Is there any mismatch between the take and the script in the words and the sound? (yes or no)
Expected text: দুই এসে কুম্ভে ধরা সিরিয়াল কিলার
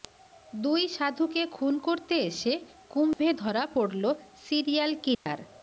yes